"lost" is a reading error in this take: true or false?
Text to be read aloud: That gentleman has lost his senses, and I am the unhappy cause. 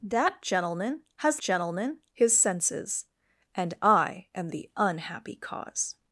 true